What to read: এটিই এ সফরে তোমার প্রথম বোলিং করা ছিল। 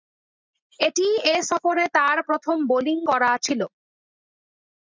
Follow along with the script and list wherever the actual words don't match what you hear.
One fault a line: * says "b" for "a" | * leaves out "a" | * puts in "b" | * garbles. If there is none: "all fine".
* says "তার" for "তোমার"